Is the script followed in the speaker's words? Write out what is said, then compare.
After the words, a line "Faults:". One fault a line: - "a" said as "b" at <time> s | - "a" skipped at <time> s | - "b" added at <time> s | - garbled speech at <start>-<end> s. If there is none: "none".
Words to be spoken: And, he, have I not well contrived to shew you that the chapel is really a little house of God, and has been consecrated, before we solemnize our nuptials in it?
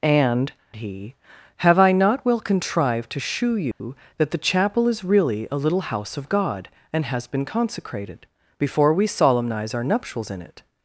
And, he, have I not well contrived to shew you that the chapel is really a little house of God, and has been consecrated, before we solemnize our nuptials in it?
Faults:
none